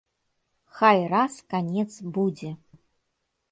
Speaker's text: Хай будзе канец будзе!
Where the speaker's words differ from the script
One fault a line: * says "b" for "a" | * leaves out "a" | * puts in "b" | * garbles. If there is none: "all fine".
* says "раз" for "будзе"